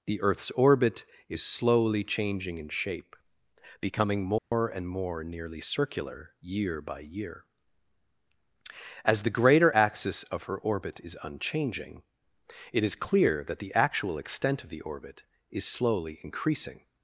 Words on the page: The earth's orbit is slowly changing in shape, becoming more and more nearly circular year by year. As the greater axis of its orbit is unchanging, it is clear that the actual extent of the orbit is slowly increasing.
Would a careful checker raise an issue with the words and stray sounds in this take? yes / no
yes